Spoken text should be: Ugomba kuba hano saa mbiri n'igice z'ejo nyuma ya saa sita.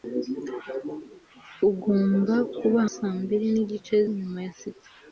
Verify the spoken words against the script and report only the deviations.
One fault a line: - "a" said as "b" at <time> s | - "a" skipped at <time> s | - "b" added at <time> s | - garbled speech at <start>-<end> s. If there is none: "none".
- "hano" skipped at 2.8 s
- "z'ejo" skipped at 4.0 s
- "saa" skipped at 4.5 s